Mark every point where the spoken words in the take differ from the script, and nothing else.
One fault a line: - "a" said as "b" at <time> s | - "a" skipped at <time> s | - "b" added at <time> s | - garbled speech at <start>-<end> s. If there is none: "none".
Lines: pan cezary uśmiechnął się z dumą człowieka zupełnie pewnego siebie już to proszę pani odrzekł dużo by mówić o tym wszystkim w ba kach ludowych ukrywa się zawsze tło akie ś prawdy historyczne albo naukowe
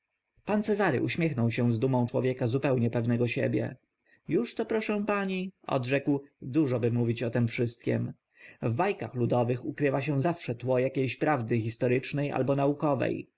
none